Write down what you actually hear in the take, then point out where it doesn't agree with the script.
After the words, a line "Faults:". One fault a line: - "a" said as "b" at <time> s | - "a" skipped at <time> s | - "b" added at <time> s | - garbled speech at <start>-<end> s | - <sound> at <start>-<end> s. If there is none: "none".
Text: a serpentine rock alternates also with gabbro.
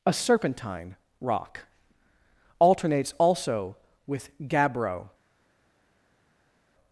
a serpentine rock alternates also with gabbro.
Faults:
none